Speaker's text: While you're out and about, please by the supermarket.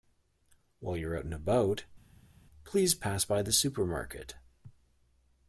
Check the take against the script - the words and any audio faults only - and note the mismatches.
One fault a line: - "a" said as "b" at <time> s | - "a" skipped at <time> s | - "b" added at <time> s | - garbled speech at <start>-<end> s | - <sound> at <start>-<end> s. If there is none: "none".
- "pass" added at 2.9 s